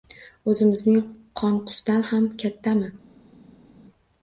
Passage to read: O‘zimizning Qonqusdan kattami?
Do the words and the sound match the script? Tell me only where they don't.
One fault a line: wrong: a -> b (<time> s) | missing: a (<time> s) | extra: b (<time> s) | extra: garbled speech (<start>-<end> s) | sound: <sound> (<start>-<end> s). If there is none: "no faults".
extra: ham (2.1 s)